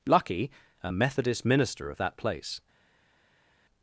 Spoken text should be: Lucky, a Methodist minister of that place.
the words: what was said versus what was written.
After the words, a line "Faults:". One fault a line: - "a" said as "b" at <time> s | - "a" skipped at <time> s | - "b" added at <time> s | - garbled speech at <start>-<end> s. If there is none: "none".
Lucky, a Methodist minister of that place.
Faults:
none